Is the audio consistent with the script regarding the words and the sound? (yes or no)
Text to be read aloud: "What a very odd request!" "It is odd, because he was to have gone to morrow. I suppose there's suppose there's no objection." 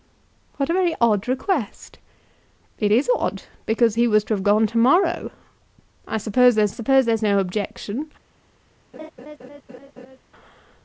no